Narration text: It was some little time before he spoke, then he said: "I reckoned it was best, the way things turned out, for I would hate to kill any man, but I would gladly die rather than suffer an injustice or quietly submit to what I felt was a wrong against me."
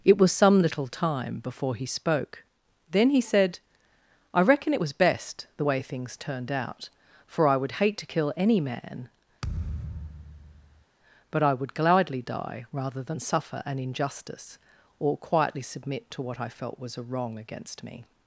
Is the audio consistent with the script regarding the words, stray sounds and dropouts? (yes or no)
no